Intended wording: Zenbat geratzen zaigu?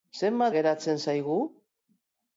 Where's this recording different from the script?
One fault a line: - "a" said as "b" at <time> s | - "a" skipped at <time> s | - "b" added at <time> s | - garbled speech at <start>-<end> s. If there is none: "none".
none